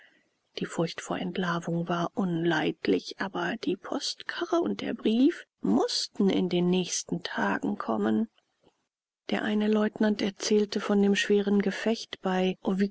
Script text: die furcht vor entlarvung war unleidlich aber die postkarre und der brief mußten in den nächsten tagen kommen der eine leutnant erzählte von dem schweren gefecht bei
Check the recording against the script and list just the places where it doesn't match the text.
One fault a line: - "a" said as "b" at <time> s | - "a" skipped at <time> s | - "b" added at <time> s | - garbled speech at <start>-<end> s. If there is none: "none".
none